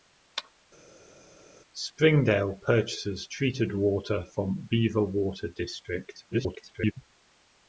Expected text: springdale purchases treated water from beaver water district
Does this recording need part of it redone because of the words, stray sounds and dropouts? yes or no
yes